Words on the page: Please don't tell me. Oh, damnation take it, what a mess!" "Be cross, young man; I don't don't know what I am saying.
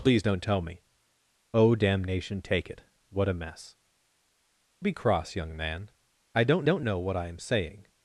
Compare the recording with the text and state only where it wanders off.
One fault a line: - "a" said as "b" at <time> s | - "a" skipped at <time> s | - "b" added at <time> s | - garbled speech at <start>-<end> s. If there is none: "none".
none